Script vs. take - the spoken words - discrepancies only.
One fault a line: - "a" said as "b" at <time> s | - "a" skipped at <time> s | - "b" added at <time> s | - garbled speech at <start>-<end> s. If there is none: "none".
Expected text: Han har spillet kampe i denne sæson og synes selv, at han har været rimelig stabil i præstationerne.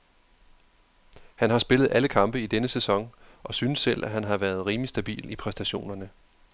- "alle" added at 1.9 s